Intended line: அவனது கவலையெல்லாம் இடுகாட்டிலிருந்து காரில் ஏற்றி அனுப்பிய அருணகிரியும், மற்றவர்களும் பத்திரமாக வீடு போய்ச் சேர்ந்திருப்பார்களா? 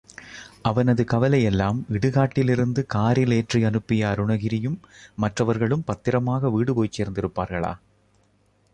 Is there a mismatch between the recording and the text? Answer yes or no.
no